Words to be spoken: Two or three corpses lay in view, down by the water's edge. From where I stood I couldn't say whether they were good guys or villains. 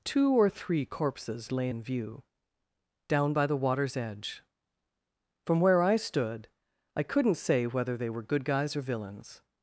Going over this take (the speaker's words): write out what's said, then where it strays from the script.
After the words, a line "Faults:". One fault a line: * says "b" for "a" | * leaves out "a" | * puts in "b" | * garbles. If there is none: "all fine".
Two or three corpses lay in view, down by the water's edge. From where I stood I couldn't say whether they were good guys or villains.
Faults:
all fine